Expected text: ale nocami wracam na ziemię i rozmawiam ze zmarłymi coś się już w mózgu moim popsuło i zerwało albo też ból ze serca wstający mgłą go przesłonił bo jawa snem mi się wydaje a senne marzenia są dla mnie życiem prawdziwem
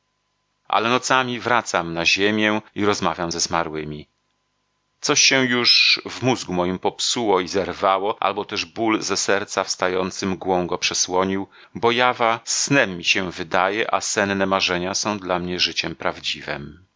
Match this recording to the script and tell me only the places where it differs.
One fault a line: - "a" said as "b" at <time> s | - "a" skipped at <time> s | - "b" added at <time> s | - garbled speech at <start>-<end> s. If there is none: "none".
none